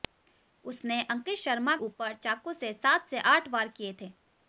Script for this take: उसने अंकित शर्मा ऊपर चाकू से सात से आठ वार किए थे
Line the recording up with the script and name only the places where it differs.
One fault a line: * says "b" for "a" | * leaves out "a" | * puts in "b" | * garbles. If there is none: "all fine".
all fine